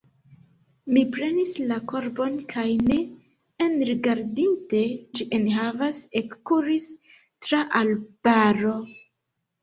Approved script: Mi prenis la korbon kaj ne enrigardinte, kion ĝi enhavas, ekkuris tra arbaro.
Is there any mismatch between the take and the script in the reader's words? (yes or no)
yes